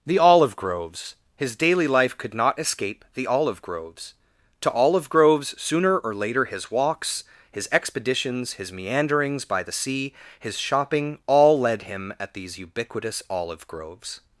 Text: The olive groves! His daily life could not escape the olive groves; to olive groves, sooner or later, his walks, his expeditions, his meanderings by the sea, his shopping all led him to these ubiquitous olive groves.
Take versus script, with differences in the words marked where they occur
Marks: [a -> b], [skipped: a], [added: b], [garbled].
The olive groves! His daily life could not escape the olive groves; to olive groves, sooner or later, his walks, his expeditions, his meanderings by the sea, his shopping all led him [to -> at] these ubiquitous olive groves.